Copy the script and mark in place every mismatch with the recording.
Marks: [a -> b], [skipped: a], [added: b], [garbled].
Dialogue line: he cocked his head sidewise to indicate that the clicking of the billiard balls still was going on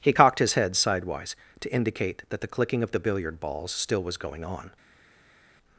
he cocked his head sidewise to indicate that the clicking of the billiard balls still was going on